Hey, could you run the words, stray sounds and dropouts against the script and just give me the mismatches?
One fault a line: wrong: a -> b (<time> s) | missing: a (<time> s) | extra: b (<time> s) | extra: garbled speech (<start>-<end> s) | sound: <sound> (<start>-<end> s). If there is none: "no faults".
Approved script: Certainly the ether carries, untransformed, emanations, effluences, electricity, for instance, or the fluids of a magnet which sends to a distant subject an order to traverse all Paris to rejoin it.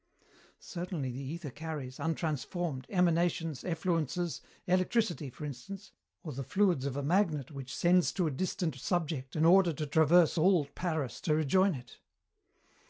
no faults